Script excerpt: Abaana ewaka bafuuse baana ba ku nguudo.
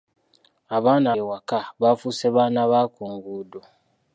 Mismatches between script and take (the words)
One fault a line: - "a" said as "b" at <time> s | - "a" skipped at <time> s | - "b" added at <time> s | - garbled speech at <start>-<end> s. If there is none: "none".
none